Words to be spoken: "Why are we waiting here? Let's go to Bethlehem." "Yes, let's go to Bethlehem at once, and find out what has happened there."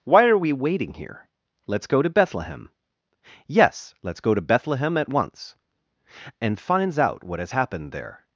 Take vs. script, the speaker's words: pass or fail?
fail